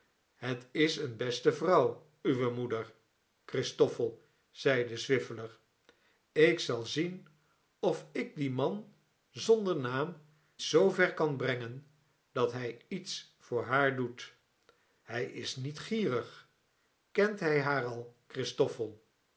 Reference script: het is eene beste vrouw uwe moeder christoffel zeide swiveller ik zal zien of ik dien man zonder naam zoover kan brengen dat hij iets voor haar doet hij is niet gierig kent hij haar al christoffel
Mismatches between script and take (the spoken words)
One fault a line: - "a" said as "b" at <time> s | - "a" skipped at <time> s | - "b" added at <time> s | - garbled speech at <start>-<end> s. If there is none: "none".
none